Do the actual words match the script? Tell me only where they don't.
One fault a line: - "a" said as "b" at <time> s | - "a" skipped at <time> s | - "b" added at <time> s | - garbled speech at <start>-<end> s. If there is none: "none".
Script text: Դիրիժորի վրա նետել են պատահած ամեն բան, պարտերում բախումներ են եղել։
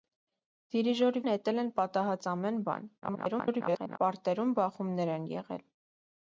- "վրա" skipped at 1.2 s
- garbled speech at 3.0-4.0 s